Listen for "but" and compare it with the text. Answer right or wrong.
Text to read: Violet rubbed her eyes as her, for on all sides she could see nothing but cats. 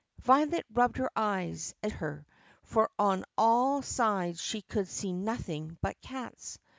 right